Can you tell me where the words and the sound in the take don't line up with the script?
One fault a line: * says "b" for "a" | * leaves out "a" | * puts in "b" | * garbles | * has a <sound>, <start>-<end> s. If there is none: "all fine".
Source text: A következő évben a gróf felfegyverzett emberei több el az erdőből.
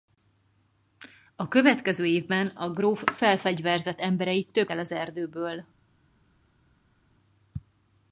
all fine